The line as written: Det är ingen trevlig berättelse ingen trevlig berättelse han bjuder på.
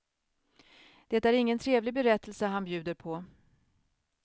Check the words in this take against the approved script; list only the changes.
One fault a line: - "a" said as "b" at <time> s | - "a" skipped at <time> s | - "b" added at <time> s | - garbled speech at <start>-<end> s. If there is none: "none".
- "ingen trevlig berättelse" skipped at 2.5 s